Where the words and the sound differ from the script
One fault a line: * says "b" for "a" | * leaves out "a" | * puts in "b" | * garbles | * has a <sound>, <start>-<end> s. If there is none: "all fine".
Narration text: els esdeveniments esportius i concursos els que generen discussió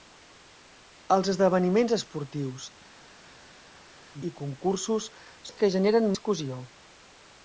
all fine